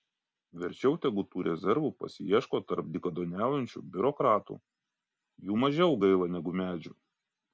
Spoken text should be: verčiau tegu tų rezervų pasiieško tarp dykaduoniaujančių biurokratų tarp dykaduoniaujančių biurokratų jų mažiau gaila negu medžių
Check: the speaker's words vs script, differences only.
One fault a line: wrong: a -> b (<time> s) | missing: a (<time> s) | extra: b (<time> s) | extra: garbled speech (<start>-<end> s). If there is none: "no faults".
missing: tarp dykaduoniaujančių biurokratų (4.6 s)